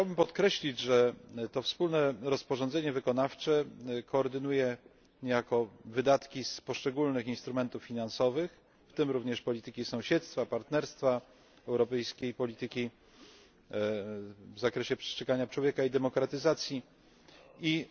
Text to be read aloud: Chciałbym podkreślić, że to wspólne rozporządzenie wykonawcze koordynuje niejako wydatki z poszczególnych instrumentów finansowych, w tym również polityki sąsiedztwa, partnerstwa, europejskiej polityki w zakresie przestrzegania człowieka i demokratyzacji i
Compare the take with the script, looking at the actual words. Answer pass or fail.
pass